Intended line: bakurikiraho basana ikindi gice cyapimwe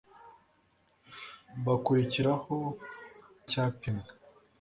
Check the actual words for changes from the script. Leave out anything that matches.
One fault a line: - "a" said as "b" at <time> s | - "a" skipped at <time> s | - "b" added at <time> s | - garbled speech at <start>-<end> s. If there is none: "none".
- "basana ikindi gice" skipped at 2.5 s